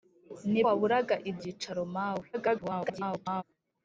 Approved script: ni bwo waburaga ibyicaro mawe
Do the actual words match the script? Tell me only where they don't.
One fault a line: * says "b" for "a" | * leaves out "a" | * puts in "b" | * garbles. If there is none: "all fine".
* leaves out "bwo"
* garbles